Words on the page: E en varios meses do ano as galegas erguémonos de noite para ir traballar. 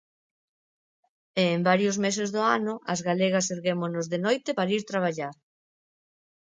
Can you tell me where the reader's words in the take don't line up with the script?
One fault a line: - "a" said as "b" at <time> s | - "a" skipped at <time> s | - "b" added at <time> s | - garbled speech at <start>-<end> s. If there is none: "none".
none